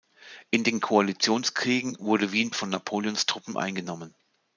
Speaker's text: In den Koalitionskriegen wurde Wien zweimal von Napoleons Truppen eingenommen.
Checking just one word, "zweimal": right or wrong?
wrong